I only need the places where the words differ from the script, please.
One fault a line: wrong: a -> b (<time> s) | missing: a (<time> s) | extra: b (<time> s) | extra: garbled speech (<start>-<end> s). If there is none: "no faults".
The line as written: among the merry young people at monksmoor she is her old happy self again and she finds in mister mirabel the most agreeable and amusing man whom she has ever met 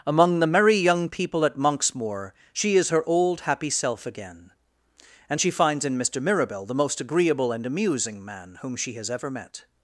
no faults